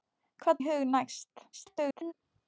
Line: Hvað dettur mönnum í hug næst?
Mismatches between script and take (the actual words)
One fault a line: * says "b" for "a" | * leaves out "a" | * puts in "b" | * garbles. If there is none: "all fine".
* leaves out "dettur mönnum"
* garbles